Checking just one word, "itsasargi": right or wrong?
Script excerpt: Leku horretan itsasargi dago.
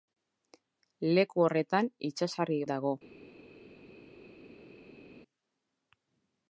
right